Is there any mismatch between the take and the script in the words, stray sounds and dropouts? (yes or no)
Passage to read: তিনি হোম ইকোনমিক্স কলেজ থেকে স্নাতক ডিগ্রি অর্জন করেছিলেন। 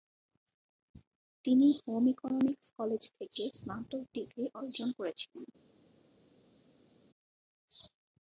no